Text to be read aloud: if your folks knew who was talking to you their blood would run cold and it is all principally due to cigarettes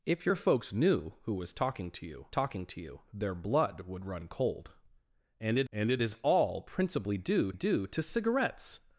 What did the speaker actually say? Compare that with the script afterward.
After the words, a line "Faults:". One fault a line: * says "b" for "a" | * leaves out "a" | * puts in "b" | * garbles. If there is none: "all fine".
if your folks knew who was talking to you talking to you their blood would run cold and it and it is all principally due due to cigarettes
Faults:
* puts in "talking to you"
* puts in "and it"
* puts in "due"